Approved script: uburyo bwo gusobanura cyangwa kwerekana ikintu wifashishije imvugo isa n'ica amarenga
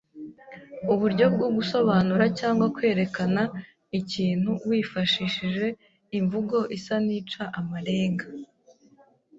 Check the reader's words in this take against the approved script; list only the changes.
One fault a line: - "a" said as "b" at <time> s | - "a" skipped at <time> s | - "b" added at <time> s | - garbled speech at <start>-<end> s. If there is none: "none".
none